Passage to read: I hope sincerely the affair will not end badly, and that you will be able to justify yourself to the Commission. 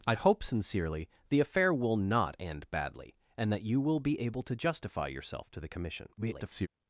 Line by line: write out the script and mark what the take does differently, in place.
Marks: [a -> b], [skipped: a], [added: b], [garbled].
I hope sincerely the affair will not end badly, and that you will be able to justify yourself to the Commission. [garbled]